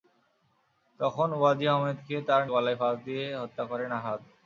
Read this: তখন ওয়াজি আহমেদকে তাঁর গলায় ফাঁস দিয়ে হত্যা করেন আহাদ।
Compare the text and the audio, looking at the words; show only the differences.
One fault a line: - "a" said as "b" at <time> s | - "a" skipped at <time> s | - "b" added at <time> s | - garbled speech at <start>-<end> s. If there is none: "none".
none